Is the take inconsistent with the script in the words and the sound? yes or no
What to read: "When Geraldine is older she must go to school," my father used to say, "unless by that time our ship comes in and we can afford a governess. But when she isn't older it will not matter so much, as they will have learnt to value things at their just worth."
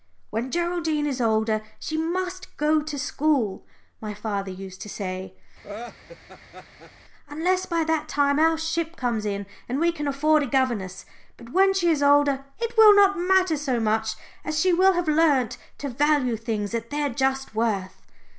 yes